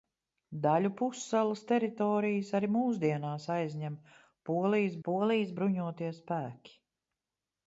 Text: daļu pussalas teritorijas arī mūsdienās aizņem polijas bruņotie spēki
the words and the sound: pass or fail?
fail